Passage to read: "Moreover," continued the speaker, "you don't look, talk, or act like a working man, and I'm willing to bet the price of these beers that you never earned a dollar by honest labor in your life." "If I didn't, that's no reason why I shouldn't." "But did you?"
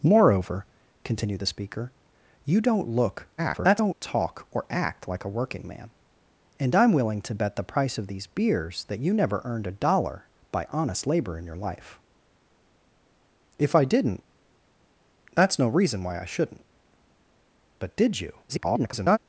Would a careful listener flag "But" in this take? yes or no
no